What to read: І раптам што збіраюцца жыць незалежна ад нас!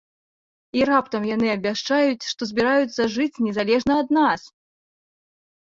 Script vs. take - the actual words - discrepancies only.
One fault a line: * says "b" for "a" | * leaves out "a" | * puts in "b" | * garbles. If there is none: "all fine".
* puts in "яны абвяшчаюць"